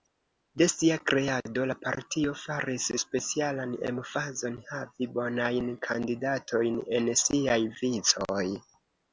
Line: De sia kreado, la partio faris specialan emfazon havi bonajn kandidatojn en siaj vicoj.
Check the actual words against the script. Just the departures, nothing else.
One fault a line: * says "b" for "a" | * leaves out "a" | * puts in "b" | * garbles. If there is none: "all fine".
all fine